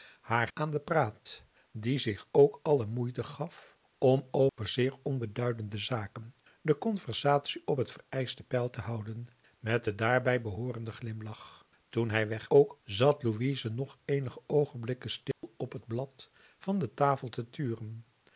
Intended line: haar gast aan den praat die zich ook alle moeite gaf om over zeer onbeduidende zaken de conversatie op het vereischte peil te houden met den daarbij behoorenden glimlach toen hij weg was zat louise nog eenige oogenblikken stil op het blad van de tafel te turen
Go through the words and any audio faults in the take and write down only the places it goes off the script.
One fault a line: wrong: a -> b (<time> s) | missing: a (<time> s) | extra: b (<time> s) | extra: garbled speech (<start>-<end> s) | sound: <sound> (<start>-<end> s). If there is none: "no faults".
missing: gast (0.5 s)
sound: dropout (4.5-4.6 s)
wrong: was -> ook (12.5 s)
sound: dropout (15.3-15.4 s)